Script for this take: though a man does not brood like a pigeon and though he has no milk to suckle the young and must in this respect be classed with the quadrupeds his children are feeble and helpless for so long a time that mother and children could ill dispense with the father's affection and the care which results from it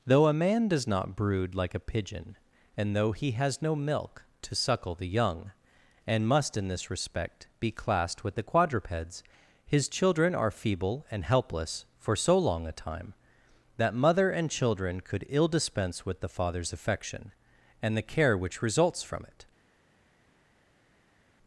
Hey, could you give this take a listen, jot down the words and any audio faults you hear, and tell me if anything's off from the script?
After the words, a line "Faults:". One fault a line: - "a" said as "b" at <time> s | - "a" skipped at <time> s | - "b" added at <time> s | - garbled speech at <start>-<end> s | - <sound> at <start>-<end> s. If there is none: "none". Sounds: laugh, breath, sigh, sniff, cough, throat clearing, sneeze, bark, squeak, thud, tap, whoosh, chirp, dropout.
though a man does not brood like a pigeon and though he has no milk to suckle the young and must in this respect be classed with the quadrupeds his children are feeble and helpless for so long a time that mother and children could ill dispense with the father's affection and the care which results from it
Faults:
none